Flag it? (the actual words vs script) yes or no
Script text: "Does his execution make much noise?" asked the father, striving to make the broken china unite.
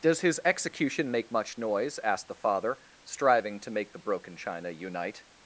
no